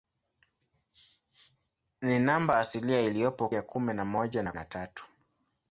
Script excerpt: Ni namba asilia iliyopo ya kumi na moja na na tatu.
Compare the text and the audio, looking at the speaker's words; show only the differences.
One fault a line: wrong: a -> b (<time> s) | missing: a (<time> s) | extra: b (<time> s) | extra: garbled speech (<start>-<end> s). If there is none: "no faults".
no faults